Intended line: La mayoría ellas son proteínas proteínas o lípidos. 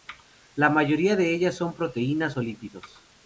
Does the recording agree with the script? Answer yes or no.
no